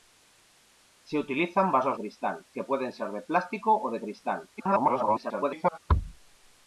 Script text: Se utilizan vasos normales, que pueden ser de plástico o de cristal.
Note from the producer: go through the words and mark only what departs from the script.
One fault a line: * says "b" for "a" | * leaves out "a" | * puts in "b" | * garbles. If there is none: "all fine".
* says "cristal" for "normales"
* garbles